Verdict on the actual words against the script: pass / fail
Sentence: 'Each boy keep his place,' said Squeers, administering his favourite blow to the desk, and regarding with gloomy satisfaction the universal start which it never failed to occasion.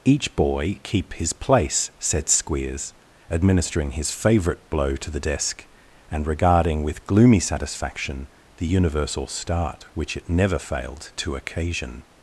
pass